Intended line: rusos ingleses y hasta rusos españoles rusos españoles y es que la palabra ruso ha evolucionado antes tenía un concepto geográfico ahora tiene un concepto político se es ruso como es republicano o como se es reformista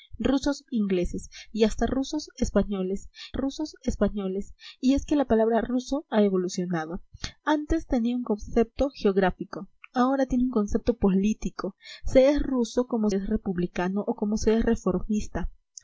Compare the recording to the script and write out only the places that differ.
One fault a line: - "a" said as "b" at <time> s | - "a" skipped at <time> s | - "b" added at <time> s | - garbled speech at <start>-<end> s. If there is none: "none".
none